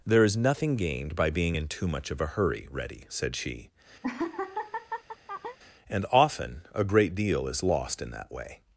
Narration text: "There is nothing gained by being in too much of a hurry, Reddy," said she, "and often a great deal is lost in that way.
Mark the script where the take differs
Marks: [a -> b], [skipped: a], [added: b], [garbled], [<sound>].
"There is nothing gained by being in too much of a hurry, Reddy," said she, [laugh] "and often a great deal is lost in that way.